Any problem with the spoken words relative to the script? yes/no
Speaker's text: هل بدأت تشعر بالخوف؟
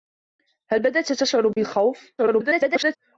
yes